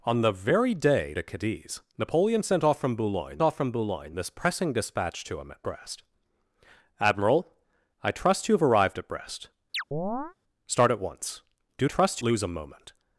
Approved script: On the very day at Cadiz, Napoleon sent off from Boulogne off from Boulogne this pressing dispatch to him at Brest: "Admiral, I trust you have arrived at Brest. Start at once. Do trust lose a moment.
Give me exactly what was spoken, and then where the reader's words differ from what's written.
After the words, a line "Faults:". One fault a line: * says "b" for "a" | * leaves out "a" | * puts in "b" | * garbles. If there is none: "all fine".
On the very day at Cadiz, Napoleon sent off from Boulogne off from Boulogne this pressing dispatch to him at Brest: "Admiral, I trust you have arrived at Brest. Start at once. Do trust lose a moment.
Faults:
all fine